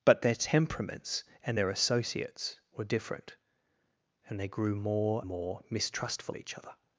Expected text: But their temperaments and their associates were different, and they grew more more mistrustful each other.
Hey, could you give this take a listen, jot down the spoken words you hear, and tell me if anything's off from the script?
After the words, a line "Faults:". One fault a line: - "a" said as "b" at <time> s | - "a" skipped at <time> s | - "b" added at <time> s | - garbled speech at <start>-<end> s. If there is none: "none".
But their temperaments and their associates were different, and they grew more more mistrustful each other.
Faults:
none